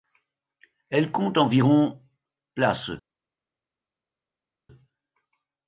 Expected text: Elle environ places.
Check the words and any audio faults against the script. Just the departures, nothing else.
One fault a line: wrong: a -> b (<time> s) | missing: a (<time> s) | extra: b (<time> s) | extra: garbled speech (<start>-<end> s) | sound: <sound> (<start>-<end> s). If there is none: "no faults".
extra: compte (1.1 s)